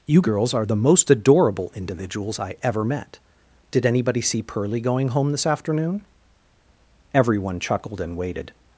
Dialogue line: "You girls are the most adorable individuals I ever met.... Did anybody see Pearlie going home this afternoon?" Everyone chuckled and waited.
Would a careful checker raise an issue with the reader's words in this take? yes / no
no